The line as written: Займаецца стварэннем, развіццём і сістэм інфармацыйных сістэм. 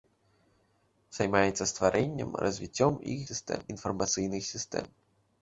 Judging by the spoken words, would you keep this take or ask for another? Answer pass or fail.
pass